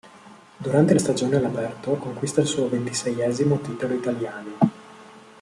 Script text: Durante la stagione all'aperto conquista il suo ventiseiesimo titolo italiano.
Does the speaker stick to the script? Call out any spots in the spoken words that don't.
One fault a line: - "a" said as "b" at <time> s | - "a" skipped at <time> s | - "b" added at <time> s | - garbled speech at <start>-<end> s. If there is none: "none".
none